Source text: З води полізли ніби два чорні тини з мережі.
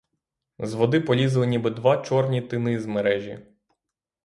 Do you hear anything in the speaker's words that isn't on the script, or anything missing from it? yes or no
no